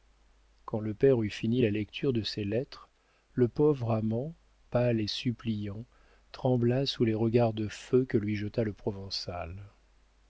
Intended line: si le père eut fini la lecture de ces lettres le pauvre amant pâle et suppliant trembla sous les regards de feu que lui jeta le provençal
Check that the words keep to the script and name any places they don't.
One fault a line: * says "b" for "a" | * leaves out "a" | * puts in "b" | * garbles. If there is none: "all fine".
* says "quand" for "si"